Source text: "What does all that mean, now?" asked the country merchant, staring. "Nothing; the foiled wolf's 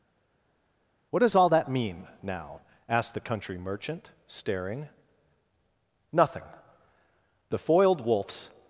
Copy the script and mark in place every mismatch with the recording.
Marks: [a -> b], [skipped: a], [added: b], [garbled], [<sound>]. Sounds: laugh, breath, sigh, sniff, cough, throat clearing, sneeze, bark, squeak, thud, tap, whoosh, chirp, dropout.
"What does all that mean, now?" asked the country merchant, staring. "Nothing; the foiled wolf's